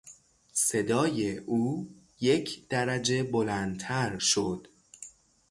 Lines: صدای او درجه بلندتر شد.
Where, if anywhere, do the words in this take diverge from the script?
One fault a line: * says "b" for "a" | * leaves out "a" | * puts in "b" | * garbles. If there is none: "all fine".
* puts in "یک"